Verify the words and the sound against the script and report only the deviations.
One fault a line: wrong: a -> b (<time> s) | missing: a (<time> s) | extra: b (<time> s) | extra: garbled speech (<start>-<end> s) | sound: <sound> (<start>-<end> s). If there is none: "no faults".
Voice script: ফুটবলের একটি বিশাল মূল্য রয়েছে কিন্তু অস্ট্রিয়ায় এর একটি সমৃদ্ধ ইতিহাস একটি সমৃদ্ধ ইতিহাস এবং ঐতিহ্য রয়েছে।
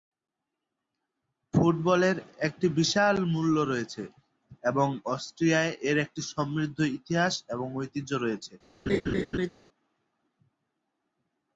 wrong: কিন্তু -> এবং (4.6 s)
missing: একটি সমৃদ্ধ ইতিহাস (7.3 s)
sound: laugh (8.9-9.5 s)